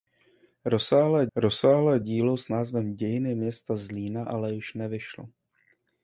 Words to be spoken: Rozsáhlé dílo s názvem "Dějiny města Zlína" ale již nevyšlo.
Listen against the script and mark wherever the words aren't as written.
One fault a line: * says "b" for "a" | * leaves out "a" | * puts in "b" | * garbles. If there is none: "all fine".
* puts in "rozsáhlé"